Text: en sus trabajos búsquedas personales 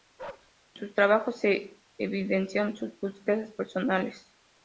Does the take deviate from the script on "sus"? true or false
false